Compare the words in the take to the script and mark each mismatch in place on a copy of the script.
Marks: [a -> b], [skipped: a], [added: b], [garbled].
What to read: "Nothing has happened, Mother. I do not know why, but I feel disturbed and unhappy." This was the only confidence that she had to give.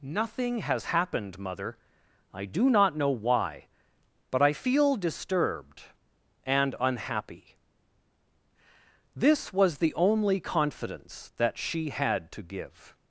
"Nothing has happened, Mother. I do not know why, but I feel disturbed and unhappy." This was the only confidence that she had to give.